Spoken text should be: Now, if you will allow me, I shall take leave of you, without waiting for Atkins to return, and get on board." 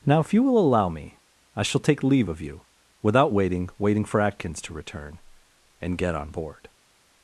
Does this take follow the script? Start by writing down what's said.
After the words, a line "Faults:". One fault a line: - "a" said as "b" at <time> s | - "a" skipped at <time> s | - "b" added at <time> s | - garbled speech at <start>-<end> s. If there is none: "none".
Now, if you will allow me, I shall take leave of you, without waiting waiting for Atkins to return, and get on board."
Faults:
- "waiting" added at 3.8 s